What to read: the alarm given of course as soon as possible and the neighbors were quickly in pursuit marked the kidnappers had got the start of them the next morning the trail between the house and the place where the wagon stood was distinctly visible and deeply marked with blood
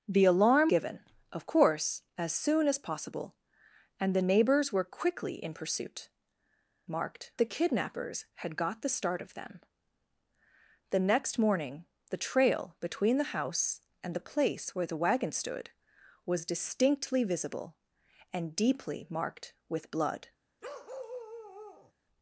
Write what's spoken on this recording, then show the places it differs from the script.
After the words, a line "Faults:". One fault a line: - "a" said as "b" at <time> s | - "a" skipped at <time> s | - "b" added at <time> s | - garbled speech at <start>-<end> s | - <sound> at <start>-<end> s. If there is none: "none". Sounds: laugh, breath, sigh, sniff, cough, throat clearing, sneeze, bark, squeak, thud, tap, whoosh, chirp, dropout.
the alarm given of course as soon as possible and the neighbors were quickly in pursuit marked the kidnappers had got the start of them the next morning the trail between the house and the place where the wagon stood was distinctly visible and deeply marked with blood
Faults:
- bark at 20.6-21.9 s